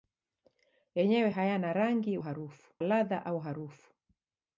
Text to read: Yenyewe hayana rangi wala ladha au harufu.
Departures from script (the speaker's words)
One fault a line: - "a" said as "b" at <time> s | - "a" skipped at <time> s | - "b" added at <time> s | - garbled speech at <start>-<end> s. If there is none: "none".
- "wala" said as "harufu" at 2.2 s